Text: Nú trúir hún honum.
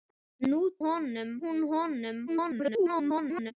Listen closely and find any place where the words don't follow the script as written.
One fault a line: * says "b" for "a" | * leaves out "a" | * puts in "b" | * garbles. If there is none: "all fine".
* says "honum" for "trúir"
* garbles